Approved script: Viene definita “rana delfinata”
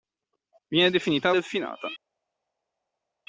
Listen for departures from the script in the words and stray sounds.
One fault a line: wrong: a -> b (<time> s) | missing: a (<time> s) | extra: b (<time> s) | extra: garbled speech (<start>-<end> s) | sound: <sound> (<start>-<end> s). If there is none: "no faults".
missing: rana (1.3 s)